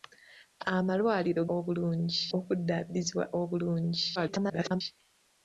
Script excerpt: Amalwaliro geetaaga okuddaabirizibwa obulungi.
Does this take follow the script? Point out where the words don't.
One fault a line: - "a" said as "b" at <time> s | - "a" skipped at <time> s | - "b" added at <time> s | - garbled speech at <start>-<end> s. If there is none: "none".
- "geetaaga" said as "obulungi" at 1.6 s
- garbled speech at 4.2-4.8 s